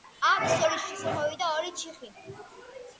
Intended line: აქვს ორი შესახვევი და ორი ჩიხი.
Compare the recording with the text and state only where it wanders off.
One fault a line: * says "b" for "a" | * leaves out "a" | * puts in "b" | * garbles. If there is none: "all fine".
all fine